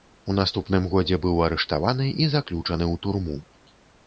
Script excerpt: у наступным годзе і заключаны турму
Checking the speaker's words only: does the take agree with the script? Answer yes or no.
no